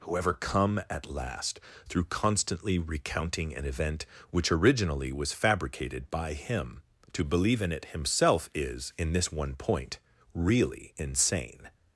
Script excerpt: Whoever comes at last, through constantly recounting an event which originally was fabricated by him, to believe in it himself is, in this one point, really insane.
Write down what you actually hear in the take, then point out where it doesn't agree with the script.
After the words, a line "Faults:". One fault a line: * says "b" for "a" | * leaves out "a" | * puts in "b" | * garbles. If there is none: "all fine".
Whoever come at last, through constantly recounting an event which originally was fabricated by him, to believe in it himself is, in this one point, really insane.
Faults:
* says "come" for "comes"